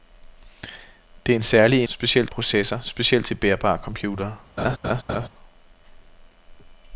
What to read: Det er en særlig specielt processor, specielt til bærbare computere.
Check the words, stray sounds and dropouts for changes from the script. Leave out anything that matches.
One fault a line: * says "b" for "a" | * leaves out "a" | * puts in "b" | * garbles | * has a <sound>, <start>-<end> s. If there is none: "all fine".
* has a laugh, 4.6-5.3 s